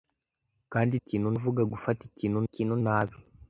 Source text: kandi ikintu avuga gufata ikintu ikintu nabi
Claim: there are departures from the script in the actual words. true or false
false